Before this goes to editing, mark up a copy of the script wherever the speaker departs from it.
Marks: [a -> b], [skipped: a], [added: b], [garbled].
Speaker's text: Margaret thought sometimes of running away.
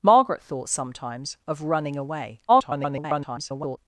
Margaret thought sometimes of running away. [garbled]